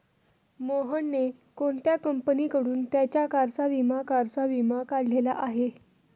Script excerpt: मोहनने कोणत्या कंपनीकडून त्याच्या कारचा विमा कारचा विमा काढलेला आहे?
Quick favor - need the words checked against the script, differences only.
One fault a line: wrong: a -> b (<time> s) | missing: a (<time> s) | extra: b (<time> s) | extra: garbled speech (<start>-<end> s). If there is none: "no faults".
no faults